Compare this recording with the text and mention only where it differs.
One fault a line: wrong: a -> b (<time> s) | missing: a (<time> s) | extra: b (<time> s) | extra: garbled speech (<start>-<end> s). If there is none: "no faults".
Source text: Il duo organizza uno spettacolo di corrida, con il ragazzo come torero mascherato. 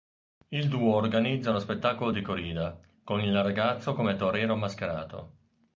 no faults